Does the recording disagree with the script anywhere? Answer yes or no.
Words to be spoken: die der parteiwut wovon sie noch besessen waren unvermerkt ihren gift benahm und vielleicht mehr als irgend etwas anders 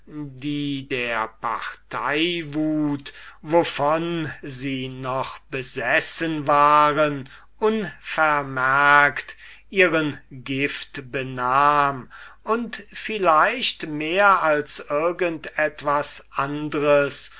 no